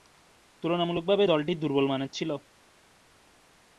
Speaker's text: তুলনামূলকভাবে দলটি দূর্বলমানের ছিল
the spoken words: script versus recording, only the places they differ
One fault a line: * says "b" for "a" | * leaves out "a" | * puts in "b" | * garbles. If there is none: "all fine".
all fine